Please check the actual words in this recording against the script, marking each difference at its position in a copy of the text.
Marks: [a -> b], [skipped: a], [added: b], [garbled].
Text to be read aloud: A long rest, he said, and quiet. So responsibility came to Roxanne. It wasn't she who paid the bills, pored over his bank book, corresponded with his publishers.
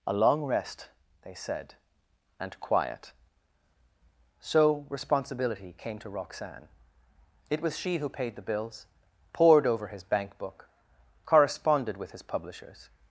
A long rest, [he -> they] said, and quiet. So responsibility came to Roxanne. It [wasn't -> was] she who paid the bills, pored over his bank book, corresponded with his publishers.